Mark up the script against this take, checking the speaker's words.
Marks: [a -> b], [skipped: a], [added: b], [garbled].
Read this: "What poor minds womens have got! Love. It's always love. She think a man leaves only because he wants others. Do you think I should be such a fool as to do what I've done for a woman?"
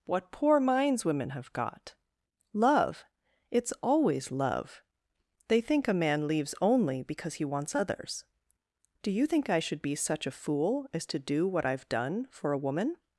"What poor minds [womens -> women] have got! Love. It's always love. [She -> They] think a man leaves only because he wants others. Do you think I should be such a fool as to do what I've done for a woman?"